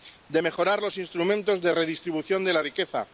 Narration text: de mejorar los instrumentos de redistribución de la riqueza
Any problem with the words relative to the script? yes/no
no